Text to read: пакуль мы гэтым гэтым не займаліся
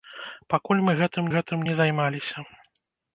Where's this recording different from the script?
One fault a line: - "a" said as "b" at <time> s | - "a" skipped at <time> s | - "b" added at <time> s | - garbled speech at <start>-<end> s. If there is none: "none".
none